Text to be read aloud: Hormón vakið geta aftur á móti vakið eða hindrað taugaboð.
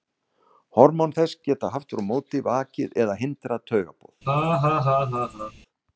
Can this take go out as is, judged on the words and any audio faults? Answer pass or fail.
fail